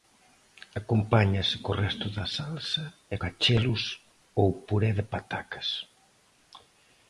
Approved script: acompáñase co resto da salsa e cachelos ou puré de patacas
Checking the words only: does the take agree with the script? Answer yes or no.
yes